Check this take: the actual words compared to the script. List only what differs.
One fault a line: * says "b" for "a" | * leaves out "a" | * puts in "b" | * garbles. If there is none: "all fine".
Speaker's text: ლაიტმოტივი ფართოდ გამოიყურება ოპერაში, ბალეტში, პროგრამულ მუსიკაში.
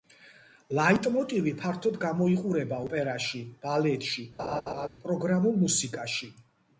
all fine